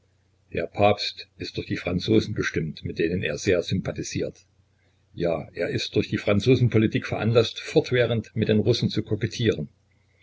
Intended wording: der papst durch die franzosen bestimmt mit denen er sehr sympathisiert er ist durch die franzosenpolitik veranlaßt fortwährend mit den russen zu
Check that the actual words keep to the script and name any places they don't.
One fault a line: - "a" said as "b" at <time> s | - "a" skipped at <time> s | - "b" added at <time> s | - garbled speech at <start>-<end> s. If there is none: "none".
- "ist" added at 1.4 s
- "ja" added at 5.1 s